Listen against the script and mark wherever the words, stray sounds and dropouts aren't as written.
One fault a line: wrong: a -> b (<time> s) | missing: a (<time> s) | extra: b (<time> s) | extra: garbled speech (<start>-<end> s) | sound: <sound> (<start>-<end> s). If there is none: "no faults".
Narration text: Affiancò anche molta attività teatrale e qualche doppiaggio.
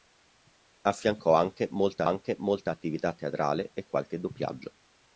extra: anche molta (2.0 s)